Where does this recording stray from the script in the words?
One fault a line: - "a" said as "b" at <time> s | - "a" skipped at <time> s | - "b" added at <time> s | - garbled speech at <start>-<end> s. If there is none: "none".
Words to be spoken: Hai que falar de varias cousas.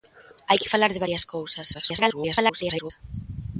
- garbled speech at 1.7-2.9 s